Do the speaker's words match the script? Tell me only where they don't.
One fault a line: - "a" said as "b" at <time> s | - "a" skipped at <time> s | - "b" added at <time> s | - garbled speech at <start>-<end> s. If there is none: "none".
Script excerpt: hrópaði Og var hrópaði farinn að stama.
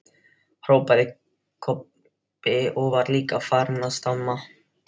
- "Kobbi" added at 1.7 s
- "hrópaði" said as "líka" at 3.2 s